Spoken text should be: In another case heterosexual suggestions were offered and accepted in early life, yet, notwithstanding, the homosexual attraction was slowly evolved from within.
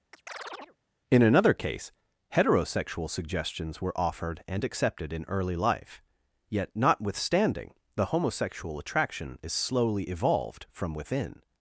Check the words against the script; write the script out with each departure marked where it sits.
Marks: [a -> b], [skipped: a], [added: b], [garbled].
In another case heterosexual suggestions were offered and accepted in early life, yet, notwithstanding, the homosexual attraction [was -> is] slowly evolved from within.